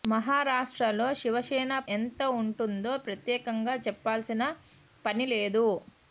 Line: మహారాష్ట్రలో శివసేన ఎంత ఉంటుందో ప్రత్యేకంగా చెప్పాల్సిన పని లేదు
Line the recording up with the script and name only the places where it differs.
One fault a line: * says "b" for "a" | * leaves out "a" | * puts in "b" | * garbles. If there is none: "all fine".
all fine